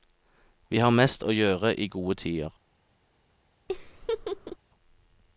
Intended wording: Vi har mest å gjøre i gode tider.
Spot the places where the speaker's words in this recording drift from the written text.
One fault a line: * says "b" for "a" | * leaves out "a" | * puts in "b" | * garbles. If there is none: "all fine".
all fine